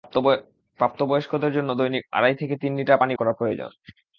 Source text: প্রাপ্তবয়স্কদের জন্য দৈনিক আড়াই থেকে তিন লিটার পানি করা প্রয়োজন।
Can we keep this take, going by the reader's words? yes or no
yes